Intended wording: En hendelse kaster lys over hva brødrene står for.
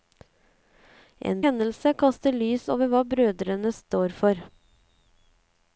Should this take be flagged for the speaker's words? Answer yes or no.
no